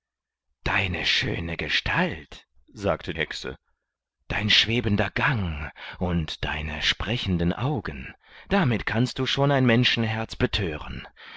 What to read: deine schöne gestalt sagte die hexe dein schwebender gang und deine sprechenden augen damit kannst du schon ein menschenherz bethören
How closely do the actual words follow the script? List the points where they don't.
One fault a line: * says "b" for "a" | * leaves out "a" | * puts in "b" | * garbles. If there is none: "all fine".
* leaves out "die"